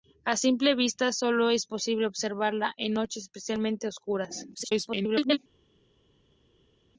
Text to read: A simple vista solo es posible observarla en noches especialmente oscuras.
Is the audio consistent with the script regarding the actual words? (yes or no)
no